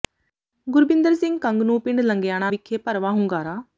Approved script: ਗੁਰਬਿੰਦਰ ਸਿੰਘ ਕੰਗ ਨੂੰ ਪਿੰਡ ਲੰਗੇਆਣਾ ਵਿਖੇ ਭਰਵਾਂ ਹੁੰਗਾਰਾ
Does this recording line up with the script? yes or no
yes